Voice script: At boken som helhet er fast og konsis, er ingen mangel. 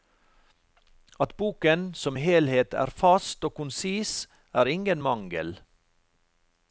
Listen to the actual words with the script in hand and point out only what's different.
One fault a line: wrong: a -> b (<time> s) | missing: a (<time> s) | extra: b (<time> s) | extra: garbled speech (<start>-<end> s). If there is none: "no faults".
no faults